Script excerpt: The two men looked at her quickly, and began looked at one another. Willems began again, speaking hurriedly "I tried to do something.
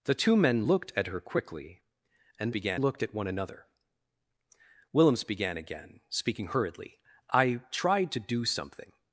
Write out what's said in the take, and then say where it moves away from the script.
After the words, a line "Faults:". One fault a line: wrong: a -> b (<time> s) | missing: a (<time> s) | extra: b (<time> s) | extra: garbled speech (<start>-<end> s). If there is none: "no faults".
The two men looked at her quickly, and began looked at one another. Willems began again, speaking hurriedly "I tried to do something.
Faults:
no faults